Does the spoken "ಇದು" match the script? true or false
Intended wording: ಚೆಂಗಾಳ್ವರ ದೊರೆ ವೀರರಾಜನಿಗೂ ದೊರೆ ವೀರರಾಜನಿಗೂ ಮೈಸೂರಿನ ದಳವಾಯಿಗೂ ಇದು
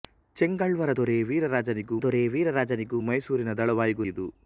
true